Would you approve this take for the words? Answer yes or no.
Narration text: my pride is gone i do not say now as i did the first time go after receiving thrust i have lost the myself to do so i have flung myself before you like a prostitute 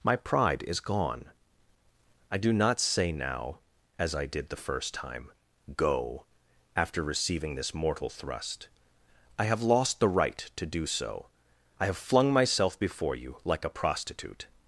no